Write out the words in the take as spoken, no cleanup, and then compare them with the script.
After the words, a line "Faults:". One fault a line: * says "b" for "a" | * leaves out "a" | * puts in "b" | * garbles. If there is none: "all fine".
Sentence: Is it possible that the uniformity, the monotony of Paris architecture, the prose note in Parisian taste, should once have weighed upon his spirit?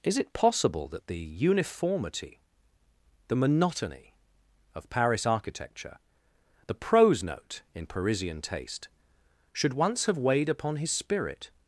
Is it possible that the uniformity, the monotony of Paris architecture, the prose note in Parisian taste, should once have weighed upon his spirit?
Faults:
all fine